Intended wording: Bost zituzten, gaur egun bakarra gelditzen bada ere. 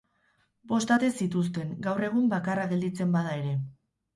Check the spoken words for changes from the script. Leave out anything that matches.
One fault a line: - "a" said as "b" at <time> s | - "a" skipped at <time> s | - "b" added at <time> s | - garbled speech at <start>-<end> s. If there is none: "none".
- "ate" added at 0.9 s